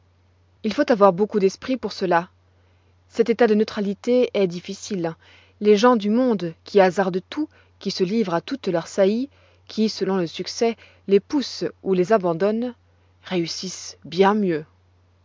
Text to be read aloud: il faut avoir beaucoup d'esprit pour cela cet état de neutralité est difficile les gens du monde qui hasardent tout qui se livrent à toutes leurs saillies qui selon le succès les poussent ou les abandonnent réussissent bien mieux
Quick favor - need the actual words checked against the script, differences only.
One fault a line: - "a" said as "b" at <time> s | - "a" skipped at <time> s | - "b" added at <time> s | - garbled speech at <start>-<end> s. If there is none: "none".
none